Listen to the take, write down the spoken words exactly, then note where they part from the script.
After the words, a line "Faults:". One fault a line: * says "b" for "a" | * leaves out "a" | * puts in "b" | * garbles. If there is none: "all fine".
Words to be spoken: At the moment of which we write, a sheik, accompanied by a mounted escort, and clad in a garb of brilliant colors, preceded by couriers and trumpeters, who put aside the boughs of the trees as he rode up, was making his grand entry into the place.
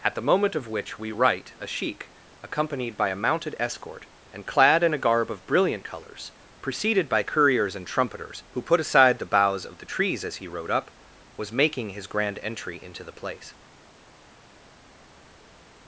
At the moment of which we write, a sheik, accompanied by a mounted escort, and clad in a garb of brilliant colors, preceded by couriers and trumpeters, who put aside the boughs of the trees as he rode up, was making his grand entry into the place.
Faults:
all fine